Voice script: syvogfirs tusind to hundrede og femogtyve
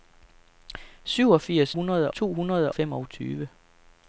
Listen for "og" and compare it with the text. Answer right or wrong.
wrong